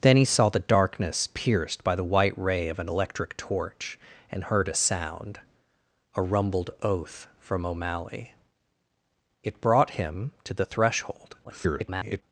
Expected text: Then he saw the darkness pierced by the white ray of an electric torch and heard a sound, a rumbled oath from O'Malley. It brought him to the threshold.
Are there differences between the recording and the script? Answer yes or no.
yes